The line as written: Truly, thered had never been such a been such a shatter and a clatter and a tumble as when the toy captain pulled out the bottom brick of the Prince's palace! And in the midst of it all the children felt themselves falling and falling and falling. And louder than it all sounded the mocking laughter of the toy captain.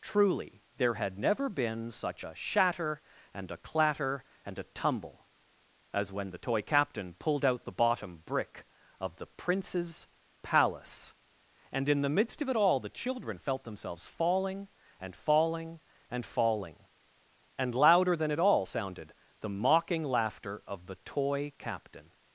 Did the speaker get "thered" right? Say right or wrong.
wrong